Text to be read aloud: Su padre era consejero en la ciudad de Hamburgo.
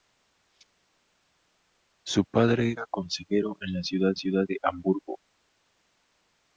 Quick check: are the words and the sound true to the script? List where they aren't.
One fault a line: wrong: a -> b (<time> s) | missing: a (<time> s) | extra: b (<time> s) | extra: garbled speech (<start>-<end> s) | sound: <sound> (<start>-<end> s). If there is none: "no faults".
extra: ciudad (4.2 s)